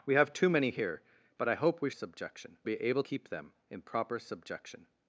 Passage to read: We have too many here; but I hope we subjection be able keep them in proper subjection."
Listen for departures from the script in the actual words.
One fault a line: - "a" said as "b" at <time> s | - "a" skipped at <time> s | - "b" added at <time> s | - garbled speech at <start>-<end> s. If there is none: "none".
none